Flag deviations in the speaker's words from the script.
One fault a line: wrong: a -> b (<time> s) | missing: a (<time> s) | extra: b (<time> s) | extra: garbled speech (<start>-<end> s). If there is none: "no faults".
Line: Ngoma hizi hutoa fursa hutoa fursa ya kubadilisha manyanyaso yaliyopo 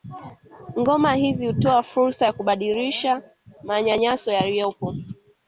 missing: hutoa fursa (2.3 s)